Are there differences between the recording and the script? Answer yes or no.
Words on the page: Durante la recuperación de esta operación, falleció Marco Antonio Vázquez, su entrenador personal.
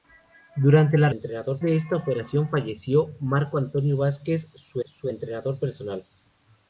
yes